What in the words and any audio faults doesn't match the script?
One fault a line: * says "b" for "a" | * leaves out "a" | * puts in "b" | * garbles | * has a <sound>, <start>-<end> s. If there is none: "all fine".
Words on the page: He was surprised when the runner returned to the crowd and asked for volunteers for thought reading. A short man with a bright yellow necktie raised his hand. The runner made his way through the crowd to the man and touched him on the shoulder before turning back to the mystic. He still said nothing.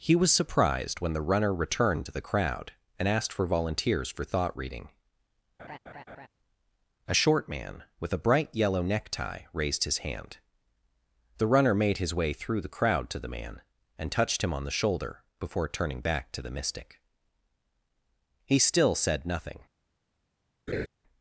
* has a laugh, 5.6-6.3 s
* has a laugh, 20.7-20.9 s